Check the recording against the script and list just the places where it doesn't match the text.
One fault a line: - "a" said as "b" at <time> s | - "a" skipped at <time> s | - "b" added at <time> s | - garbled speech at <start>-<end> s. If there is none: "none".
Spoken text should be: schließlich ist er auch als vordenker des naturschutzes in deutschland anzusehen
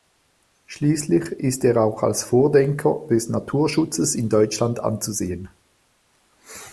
none